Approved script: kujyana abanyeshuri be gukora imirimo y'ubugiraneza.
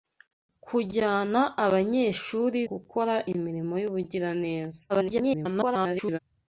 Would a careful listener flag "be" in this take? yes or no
yes